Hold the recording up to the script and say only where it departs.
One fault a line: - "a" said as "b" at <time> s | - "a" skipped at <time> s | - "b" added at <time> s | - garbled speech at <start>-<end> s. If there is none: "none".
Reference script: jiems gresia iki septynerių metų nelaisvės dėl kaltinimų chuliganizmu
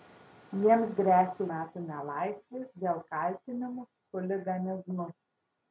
- "iki septynerių" skipped at 1.4 s